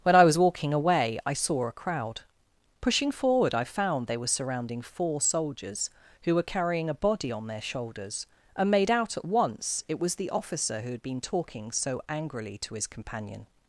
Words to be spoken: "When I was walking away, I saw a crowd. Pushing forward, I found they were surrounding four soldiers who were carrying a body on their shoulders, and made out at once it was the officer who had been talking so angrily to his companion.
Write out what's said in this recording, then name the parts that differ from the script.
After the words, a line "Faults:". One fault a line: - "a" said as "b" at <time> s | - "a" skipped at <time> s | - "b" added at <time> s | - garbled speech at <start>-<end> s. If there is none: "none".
"When I was walking away, I saw a crowd. Pushing forward, I found they were surrounding four soldiers who were carrying a body on their shoulders, and made out at once it was the officer who had been talking so angrily to his companion.
Faults:
none